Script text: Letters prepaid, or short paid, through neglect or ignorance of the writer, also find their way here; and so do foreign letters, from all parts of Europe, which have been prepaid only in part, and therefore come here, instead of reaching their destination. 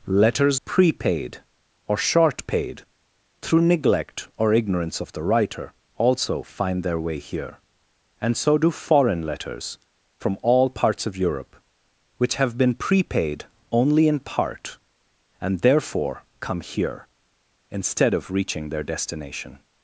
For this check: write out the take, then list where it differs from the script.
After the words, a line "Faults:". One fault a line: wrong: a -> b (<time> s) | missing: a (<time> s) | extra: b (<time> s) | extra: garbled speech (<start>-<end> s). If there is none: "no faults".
Letters prepaid, or short paid, through neglect or ignorance of the writer, also find their way here; and so do foreign letters, from all parts of Europe, which have been prepaid only in part, and therefore come here, instead of reaching their destination.
Faults:
no faults